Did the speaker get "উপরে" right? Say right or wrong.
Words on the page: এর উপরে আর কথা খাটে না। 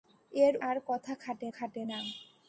wrong